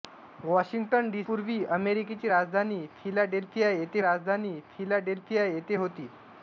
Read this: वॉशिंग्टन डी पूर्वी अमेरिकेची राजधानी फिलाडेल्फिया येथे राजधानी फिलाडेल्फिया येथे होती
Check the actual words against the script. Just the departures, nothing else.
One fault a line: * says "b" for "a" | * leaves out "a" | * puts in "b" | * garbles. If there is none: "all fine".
all fine